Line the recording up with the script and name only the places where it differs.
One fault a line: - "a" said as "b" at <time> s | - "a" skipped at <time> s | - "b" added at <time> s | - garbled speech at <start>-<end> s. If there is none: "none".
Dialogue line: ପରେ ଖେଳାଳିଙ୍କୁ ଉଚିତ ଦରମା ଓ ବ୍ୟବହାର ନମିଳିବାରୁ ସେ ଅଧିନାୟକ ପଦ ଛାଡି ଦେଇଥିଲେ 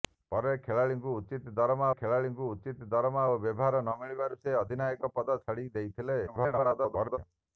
- "ଖେଳାଳିଙ୍କୁ ଉଚିତ ଦରମା" added at 1.9 s
- garbled speech at 6.3-7.2 s